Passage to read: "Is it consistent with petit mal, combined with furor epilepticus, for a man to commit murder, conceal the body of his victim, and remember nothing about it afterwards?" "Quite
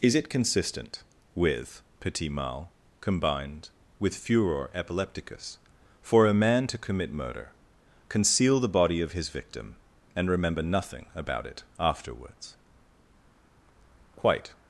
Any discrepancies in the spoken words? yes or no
no